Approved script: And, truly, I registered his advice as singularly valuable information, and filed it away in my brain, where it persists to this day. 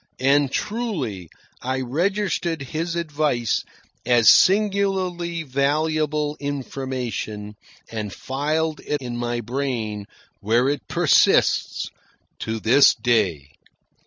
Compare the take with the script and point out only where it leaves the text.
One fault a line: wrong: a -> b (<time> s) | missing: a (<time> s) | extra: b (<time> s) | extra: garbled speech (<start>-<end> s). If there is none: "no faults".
missing: away (9.0 s)